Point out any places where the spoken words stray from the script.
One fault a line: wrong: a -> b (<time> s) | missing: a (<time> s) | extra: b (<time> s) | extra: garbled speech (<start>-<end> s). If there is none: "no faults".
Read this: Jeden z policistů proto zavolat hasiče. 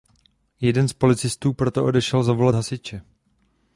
extra: odešel (1.9 s)